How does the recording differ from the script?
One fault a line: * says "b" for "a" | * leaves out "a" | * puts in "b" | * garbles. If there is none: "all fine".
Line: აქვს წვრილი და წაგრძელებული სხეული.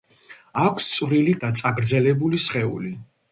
all fine